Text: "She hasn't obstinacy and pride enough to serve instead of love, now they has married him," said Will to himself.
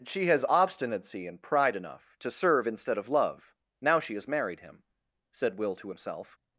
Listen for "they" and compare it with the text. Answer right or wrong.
wrong